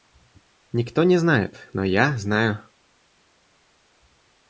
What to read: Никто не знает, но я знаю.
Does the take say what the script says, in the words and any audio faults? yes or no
yes